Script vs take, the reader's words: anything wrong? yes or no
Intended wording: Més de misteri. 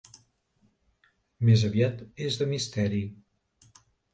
yes